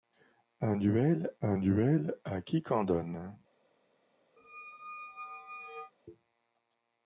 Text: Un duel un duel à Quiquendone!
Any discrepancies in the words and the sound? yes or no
yes